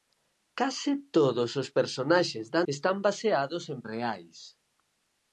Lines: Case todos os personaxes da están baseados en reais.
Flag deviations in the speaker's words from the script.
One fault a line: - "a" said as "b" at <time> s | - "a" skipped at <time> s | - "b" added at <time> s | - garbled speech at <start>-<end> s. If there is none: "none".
none